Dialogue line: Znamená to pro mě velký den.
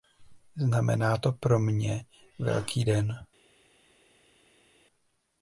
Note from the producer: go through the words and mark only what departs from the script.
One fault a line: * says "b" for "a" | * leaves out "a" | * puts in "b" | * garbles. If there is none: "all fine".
all fine